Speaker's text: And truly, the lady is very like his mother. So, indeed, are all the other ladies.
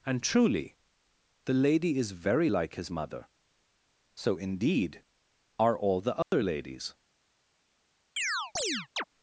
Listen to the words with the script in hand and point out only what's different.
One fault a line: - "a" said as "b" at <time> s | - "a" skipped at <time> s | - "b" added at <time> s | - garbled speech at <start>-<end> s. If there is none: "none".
none